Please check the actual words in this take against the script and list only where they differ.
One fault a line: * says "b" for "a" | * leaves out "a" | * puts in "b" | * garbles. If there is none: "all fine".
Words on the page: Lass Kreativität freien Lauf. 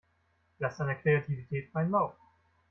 * puts in "deiner"